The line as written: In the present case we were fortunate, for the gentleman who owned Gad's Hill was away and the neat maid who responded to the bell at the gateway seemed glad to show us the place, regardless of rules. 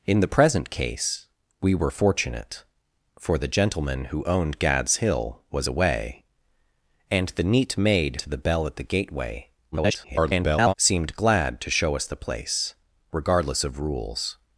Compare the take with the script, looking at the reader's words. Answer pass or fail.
fail